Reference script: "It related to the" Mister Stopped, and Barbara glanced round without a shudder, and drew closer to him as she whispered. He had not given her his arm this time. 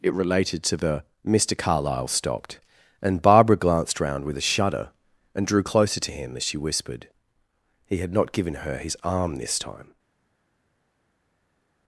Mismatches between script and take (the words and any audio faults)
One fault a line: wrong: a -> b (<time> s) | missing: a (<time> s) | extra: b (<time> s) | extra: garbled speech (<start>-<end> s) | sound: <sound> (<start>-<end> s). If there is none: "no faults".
extra: Carlyle (1.6 s)
wrong: without -> with (4.2 s)